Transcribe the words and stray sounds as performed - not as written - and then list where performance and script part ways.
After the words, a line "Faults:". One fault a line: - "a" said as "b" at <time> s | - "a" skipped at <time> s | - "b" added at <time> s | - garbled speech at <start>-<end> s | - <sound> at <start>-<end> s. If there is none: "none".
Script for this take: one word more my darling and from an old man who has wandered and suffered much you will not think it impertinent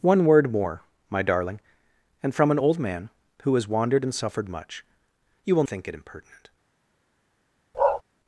one word more my darling and from an old man who has wandered and suffered much you will think it impertinent
Faults:
- "not" skipped at 5.6 s
- bark at 7.7-8.0 s